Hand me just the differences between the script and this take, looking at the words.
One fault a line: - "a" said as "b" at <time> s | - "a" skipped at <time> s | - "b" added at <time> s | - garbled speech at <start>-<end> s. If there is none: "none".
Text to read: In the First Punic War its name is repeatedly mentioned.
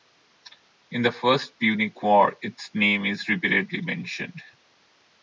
none